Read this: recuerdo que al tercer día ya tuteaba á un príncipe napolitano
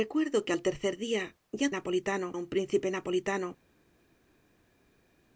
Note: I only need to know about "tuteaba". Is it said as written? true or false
false